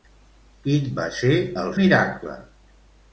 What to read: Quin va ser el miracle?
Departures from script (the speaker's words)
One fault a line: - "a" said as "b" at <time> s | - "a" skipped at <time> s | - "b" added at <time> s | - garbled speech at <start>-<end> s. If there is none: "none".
none